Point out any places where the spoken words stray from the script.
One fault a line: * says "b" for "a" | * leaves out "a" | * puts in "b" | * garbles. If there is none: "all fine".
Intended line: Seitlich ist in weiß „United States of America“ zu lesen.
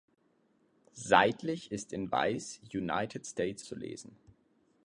* leaves out "of America"